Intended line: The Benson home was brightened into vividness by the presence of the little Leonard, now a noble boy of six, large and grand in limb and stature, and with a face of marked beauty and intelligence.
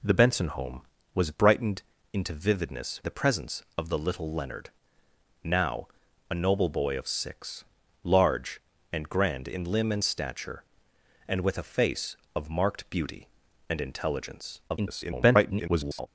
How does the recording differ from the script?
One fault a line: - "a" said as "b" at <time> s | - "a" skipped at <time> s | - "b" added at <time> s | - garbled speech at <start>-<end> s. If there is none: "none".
- "by" skipped at 3.0 s
- garbled speech at 14.7-16.1 s